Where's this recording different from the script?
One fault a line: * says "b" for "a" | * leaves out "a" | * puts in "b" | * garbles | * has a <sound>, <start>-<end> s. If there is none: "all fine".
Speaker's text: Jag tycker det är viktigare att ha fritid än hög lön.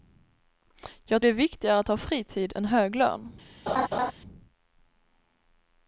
* leaves out "tycker"
* has a laugh, 3.7-4.1 s